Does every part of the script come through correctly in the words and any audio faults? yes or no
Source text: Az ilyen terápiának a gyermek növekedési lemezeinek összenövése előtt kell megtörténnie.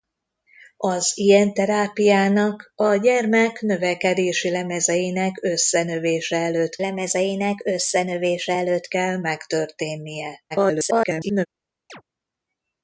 no